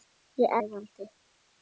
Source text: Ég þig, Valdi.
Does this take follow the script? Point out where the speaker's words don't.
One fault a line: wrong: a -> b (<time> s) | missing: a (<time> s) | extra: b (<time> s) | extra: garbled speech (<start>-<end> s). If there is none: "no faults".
no faults